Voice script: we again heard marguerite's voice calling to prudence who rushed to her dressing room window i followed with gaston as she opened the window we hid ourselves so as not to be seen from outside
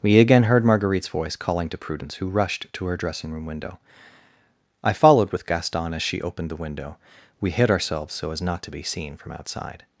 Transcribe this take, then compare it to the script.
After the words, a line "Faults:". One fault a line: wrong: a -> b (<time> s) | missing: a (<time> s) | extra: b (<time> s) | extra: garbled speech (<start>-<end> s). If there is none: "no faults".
we again heard marguerite's voice calling to prudence who rushed to her dressing room window i followed with gaston as she opened the window we hid ourselves so as not to be seen from outside
Faults:
no faults